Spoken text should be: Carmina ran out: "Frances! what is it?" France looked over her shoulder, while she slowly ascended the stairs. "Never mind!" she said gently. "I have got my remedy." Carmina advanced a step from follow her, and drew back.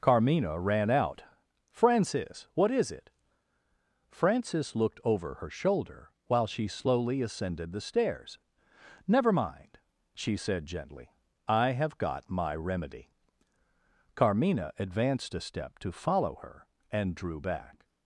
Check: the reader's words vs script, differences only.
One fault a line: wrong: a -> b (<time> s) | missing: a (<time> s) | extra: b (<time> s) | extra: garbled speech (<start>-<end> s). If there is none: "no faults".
wrong: France -> Frances (4.1 s)
wrong: from -> to (15.8 s)